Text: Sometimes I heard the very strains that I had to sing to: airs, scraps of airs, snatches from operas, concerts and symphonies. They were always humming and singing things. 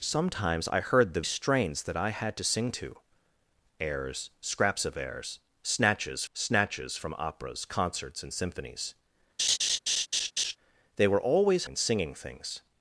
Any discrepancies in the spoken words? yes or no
yes